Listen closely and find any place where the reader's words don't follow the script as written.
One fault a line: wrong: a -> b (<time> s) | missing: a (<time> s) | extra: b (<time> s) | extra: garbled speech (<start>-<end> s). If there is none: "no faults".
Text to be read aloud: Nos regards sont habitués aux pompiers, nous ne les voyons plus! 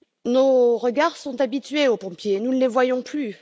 no faults